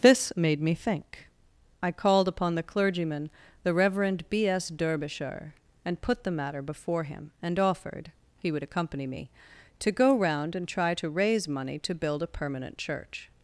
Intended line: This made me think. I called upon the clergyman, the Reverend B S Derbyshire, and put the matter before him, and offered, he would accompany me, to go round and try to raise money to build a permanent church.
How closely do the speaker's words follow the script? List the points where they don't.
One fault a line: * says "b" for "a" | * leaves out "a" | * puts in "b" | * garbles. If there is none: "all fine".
all fine